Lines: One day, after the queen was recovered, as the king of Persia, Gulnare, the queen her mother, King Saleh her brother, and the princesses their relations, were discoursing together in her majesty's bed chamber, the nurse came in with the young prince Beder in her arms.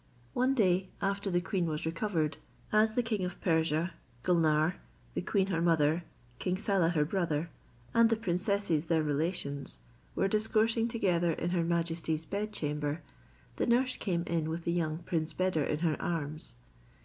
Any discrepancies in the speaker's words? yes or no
no